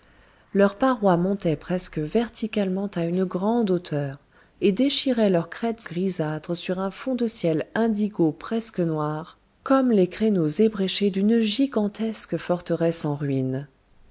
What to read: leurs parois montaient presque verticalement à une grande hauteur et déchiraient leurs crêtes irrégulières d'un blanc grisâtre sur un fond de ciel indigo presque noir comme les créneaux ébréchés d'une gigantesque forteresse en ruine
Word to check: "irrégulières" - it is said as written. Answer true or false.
false